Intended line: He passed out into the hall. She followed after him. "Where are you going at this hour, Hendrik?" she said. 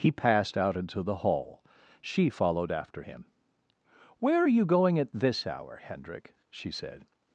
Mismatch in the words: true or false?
false